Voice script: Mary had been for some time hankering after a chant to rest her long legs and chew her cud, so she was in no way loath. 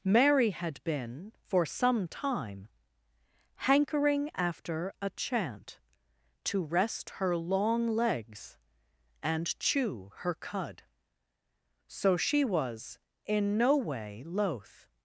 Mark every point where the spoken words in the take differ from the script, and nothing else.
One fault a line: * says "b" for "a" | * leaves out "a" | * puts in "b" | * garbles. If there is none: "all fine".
all fine